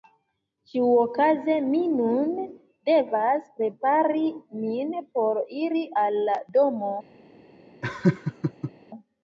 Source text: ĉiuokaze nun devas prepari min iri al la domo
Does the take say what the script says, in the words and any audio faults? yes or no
no